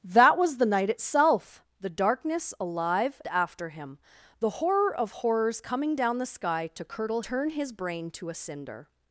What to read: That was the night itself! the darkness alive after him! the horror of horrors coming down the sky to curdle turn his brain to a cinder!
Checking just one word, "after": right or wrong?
right